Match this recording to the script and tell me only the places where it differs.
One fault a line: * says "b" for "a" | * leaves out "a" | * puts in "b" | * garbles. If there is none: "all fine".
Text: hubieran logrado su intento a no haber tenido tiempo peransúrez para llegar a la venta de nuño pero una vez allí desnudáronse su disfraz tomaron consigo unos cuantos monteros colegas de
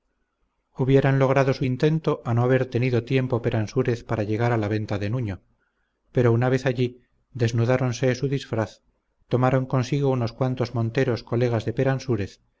all fine